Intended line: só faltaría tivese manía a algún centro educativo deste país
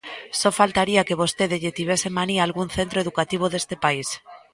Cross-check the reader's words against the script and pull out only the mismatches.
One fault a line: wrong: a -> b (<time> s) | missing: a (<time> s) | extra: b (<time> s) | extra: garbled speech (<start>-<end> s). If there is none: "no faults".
extra: que vostede lle (1.1 s)